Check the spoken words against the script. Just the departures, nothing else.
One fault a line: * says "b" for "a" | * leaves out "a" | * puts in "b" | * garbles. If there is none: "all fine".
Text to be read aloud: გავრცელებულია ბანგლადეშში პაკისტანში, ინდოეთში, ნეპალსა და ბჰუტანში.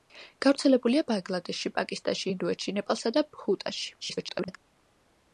* garbles